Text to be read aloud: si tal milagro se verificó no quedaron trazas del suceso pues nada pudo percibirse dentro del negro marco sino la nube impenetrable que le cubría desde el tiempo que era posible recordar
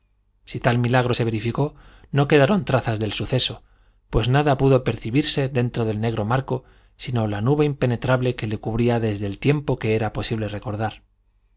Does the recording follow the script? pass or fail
pass